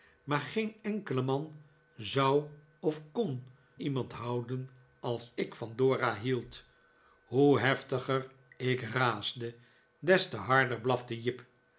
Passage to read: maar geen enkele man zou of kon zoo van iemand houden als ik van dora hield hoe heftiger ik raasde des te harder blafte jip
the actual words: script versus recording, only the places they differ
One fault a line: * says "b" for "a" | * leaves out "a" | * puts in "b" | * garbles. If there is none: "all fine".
* leaves out "zoo van"